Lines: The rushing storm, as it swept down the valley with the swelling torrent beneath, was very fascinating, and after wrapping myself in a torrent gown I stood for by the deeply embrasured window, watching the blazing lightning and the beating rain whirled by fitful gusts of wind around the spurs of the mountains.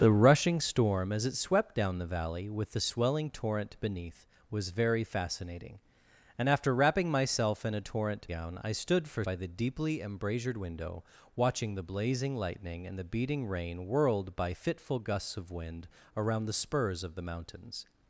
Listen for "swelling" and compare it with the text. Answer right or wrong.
right